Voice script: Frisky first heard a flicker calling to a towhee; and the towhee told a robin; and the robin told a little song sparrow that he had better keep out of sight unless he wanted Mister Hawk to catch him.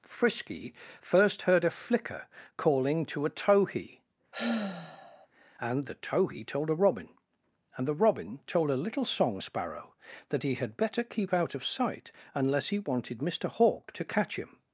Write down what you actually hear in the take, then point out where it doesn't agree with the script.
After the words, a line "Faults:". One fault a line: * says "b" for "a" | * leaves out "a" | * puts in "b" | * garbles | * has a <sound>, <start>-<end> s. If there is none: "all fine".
Frisky first heard a flicker calling to a towhee; and the towhee told a robin; and the robin told a little song sparrow that he had better keep out of sight unless he wanted Mister Hawk to catch him.
Faults:
* has a sigh, 4.3-5.3 s